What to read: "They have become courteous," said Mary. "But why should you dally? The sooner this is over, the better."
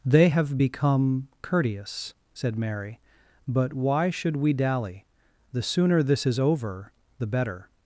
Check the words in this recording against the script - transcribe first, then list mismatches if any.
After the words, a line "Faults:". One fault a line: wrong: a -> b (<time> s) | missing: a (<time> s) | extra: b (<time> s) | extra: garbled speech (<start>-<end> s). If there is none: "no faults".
"They have become courteous," said Mary. "But why should we dally? The sooner this is over, the better."
Faults:
wrong: you -> we (4.4 s)